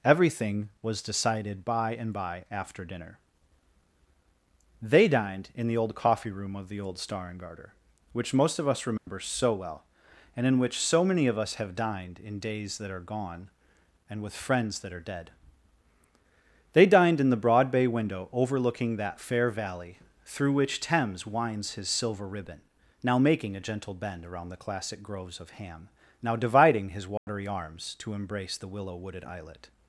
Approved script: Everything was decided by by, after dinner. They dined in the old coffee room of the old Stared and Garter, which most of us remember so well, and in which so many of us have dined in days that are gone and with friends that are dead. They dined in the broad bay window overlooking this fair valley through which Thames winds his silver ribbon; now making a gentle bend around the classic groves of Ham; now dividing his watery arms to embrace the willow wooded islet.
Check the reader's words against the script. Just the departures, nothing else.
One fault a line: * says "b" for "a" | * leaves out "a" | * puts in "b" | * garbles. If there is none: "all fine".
* puts in "and"
* says "Star" for "Stared"
* says "that" for "this"